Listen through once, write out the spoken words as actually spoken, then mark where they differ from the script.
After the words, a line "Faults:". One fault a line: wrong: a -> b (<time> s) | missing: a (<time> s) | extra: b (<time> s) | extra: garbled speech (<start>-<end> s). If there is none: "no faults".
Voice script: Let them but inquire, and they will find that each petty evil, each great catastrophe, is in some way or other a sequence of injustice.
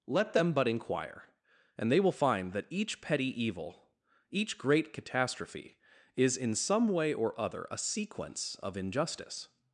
Let them but inquire, and they will find that each petty evil, each great catastrophe, is in some way or other a sequence of injustice.
Faults:
no faults